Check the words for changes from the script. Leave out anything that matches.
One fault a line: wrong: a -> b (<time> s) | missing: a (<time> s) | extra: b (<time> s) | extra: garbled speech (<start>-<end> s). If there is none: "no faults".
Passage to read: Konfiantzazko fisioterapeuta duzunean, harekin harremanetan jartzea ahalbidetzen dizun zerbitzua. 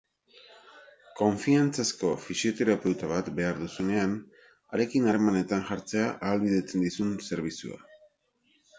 extra: bat behar (3.1 s)